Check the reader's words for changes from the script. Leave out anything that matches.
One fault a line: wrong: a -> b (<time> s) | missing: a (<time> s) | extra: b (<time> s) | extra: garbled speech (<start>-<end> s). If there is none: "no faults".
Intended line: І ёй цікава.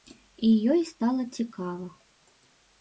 extra: стала (0.9 s)